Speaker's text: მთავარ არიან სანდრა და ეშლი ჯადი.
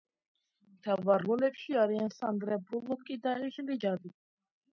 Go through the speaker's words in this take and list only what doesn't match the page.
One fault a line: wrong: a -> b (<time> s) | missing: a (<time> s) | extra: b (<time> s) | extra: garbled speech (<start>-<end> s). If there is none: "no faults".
extra: როლებში (1.3 s)
extra: ბულოკი (2.7 s)